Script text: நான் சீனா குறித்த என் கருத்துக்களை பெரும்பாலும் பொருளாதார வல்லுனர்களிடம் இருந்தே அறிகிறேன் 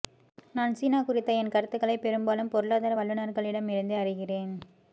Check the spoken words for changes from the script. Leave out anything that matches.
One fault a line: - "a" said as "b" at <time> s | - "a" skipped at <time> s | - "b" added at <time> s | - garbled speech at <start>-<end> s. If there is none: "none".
none